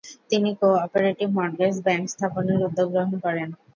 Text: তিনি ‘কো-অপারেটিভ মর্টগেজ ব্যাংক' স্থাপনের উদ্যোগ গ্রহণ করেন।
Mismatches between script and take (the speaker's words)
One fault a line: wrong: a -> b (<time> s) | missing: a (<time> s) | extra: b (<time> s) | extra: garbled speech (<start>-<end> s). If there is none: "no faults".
no faults